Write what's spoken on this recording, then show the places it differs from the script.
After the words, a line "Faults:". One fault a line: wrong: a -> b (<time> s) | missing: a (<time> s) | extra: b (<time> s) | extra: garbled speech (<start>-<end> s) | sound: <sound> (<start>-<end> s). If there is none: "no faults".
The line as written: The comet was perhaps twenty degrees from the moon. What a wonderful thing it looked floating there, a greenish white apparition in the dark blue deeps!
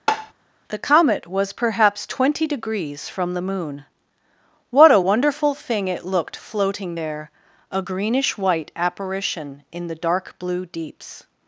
The comet was perhaps twenty degrees from the moon. What a wonderful thing it looked floating there, a greenish white apparition in the dark blue deeps!
Faults:
sound: tap (0.1-0.3 s)